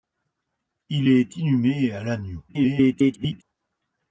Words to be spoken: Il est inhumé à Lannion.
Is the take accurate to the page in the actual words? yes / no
no